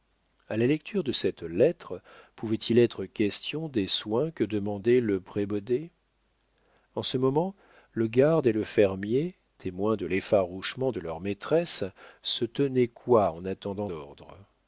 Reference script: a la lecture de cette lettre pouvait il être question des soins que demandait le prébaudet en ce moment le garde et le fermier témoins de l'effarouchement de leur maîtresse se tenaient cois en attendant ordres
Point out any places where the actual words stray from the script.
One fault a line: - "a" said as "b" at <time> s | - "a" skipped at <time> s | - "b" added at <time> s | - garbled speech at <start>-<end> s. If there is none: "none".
none